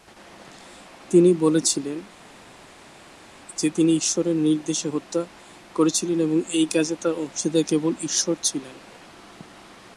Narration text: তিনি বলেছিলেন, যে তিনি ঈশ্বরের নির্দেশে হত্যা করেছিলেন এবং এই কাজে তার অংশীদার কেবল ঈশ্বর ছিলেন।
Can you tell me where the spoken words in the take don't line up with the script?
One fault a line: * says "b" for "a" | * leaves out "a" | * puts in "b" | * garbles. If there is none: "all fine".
all fine